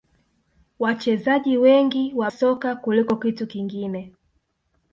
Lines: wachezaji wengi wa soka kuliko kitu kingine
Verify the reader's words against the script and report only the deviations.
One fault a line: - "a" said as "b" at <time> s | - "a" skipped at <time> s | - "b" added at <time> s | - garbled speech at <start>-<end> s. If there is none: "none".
none